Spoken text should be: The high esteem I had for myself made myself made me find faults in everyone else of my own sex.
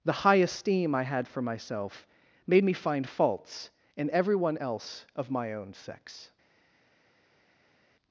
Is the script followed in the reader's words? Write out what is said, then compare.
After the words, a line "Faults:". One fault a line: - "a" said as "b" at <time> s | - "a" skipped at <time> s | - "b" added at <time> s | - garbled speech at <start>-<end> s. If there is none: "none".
The high esteem I had for myself made me find faults in everyone else of my own sex.
Faults:
- "myself made" skipped at 2.6 s